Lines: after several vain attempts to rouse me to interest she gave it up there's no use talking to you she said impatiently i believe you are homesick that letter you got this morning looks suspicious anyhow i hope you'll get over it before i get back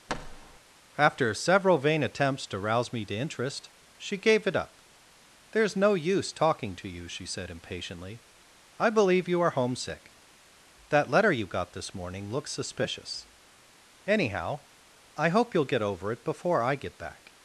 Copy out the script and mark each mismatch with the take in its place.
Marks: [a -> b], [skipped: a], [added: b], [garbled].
after several vain attempts to rouse me to interest she gave it up there's no use talking to you she said impatiently i believe you are homesick that letter you got this morning looks suspicious anyhow i hope you'll get over it before i get back